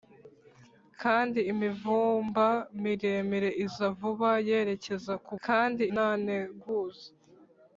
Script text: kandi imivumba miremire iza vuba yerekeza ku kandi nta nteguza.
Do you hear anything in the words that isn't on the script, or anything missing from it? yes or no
no